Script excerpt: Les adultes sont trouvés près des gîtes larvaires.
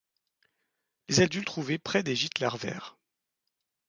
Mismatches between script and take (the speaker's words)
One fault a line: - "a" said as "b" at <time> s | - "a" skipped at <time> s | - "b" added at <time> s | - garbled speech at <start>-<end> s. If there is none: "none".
- "sont" skipped at 1.5 s